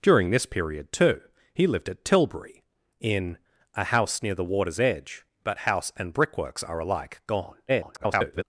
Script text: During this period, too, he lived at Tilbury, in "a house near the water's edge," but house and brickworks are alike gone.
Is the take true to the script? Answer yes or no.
no